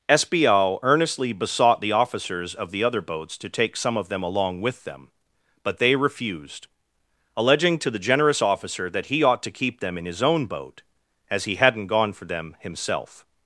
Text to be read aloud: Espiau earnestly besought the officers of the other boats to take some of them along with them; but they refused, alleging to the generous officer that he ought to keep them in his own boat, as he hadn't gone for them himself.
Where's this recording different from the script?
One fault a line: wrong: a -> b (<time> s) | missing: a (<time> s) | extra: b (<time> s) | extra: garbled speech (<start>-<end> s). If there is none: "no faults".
no faults